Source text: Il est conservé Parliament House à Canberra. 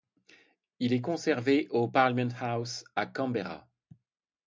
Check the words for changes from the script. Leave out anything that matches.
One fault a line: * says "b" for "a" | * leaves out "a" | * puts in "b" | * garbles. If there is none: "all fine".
* puts in "au"